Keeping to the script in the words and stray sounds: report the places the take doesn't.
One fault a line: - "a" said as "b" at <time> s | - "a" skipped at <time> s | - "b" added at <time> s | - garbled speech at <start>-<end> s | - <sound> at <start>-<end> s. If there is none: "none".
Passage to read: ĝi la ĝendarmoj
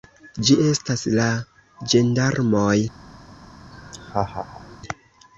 - "estas" added at 0.6 s
- laugh at 3.7-4.8 s